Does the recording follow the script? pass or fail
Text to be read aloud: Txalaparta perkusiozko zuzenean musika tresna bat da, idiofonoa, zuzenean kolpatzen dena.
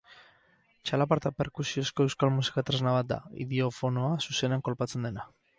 fail